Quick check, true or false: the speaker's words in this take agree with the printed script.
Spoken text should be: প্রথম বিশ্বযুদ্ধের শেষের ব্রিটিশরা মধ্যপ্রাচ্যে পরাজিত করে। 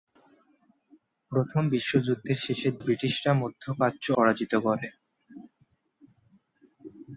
true